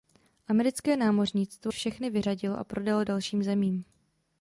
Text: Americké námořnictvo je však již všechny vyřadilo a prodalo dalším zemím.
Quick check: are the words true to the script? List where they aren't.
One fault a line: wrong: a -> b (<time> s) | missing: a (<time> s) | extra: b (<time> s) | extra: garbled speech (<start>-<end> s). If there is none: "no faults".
missing: je však již (1.7 s)